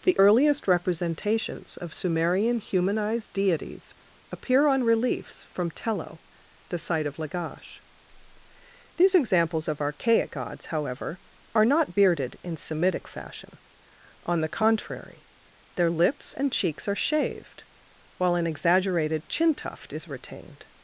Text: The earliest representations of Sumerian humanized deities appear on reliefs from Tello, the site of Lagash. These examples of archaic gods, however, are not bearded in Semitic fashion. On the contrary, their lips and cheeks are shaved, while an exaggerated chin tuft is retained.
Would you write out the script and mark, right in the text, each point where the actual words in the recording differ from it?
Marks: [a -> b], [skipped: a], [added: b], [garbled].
The earliest representations of Sumerian humanized deities appear on reliefs from Tello, the site of Lagash. These examples of archaic gods, however, are not bearded in Semitic fashion. On the contrary, their lips and cheeks are shaved, while an exaggerated chin tuft is retained.